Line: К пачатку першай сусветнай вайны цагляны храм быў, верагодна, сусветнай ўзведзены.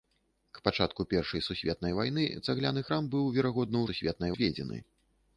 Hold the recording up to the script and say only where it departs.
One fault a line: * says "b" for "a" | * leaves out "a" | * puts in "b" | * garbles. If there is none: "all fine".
all fine